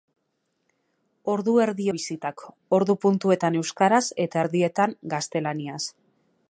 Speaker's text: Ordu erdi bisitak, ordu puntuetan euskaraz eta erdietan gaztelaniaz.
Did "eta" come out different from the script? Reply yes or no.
no